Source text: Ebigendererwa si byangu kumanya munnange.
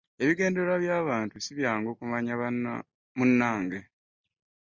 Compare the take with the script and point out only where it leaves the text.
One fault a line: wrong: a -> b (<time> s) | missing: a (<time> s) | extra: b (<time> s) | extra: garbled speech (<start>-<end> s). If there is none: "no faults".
extra: by'abantu (0.8 s)